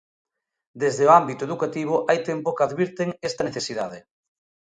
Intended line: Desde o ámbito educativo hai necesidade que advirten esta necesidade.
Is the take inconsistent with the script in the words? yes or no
yes